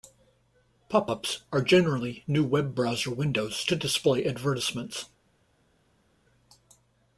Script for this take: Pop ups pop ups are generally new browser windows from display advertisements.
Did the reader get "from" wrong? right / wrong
wrong